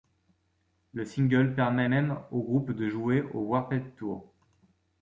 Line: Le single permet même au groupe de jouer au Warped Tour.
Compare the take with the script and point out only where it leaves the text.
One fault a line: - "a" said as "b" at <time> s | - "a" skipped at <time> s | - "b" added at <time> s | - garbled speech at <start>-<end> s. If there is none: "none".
none